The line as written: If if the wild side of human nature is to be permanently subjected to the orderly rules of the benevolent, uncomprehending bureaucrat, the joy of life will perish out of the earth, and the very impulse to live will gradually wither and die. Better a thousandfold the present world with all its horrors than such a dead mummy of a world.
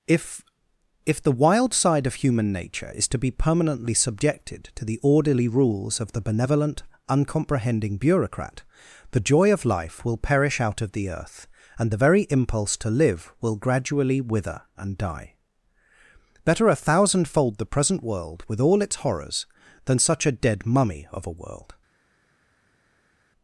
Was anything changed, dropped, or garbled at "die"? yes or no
no